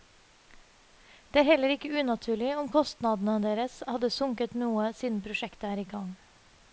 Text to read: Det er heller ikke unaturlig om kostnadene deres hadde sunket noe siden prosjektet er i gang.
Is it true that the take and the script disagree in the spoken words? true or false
false